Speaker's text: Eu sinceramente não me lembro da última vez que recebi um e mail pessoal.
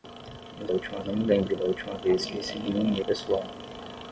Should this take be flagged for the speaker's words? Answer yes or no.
yes